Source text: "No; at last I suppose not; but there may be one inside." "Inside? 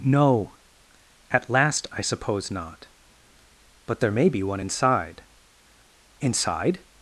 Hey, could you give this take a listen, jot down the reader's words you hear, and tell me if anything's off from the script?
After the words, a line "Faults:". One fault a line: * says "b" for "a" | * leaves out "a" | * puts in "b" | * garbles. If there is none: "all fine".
"No; at last I suppose not; but there may be one inside." "Inside?
Faults:
all fine